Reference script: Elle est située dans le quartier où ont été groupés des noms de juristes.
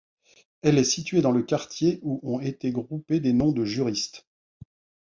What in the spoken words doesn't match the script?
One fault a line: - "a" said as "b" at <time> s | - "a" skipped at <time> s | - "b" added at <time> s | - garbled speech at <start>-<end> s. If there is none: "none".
none